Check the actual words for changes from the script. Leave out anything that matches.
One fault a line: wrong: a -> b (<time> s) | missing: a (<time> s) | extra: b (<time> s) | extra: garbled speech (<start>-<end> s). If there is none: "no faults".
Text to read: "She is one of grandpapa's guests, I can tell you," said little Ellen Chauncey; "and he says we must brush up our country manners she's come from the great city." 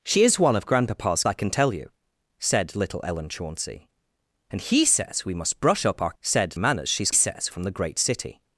missing: guests (1.2 s)
wrong: country -> said (6.2 s)
wrong: come -> says (7.1 s)